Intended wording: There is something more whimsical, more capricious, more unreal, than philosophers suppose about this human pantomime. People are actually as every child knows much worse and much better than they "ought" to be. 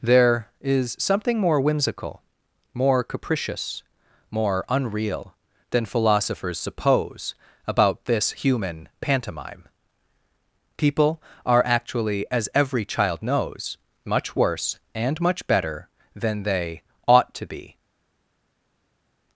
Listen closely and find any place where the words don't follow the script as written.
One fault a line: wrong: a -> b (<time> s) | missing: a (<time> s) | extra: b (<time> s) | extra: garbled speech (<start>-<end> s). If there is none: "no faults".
no faults